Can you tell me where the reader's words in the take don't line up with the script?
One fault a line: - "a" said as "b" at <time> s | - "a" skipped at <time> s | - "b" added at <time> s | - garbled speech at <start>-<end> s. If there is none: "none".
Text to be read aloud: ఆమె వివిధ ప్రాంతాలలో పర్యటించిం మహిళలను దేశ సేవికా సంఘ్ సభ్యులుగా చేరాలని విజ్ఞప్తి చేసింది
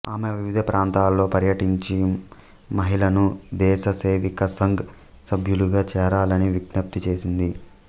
none